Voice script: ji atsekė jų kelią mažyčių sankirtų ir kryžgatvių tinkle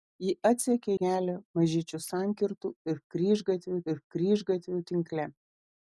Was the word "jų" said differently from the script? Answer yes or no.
yes